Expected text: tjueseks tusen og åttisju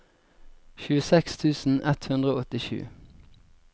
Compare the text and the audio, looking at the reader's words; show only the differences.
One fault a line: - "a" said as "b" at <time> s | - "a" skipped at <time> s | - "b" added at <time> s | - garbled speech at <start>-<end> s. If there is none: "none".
- "ett hundre" added at 1.9 s